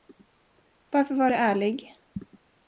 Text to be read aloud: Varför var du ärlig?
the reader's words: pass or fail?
pass